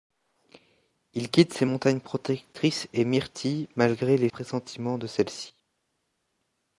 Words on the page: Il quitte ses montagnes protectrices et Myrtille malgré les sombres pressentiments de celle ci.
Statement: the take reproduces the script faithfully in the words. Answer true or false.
false